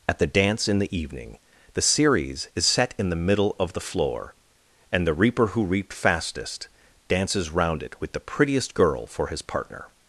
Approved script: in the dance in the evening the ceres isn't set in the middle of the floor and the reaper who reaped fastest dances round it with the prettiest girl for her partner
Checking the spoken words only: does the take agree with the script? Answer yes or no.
no